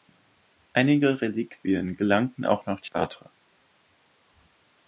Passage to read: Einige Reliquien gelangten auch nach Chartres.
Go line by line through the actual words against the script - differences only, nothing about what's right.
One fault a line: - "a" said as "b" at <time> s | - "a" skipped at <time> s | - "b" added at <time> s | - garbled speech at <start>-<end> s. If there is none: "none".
none